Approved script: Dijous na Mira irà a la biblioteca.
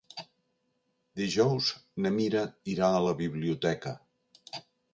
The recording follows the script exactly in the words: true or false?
true